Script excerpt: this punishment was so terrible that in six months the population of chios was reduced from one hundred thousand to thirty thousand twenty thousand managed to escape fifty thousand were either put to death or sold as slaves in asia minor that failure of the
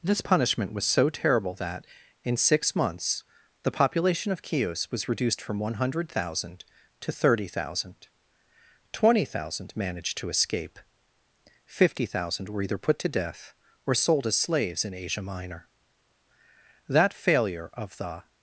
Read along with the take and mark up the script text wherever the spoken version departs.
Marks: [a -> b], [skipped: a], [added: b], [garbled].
this punishment was so terrible that in six months the population of chios was reduced from one hundred thousand to thirty thousand twenty thousand managed to escape fifty thousand were either put to death or sold as slaves in asia minor that failure of the